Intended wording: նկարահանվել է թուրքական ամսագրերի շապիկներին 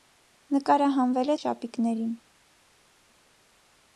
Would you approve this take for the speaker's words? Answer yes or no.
no